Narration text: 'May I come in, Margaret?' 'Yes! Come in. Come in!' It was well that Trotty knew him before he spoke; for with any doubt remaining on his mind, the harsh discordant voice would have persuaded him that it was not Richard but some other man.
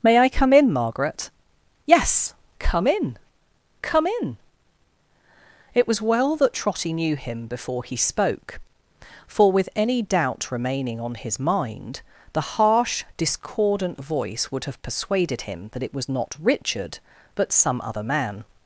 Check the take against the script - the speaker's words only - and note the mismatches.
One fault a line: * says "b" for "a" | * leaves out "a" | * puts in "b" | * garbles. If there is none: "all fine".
all fine